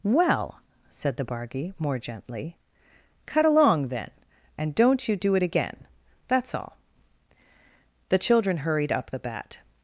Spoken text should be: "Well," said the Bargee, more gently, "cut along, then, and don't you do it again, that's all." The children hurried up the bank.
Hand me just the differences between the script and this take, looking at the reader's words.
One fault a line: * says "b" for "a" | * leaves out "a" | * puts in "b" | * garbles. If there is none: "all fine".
* says "bat" for "bank"